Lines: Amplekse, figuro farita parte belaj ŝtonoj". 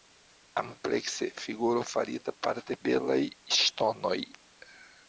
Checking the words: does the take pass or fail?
pass